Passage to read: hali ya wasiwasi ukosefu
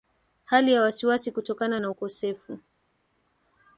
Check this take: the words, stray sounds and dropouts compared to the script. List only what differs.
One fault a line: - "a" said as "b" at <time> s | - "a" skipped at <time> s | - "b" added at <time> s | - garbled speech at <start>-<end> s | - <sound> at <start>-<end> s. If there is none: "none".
- "kutokana na" added at 1.3 s